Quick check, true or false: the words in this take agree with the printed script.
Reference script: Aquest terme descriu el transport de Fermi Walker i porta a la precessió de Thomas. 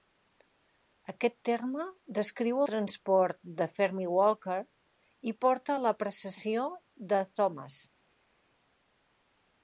false